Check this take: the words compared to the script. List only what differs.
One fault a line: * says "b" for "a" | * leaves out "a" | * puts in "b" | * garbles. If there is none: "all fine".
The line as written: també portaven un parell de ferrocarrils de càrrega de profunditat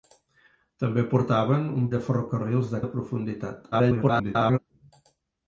* leaves out "parell"
* leaves out "càrrega"
* garbles